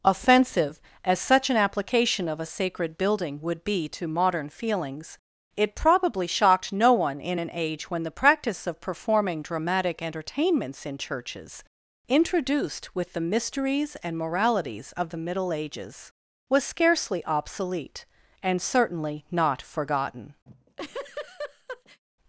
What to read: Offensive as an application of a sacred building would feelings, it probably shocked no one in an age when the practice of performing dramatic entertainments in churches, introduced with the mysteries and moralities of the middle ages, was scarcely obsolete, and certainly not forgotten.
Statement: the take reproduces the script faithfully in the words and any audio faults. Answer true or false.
false